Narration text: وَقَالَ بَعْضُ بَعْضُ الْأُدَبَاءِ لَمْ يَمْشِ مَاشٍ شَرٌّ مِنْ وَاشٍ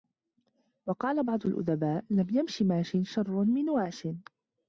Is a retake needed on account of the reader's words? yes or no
yes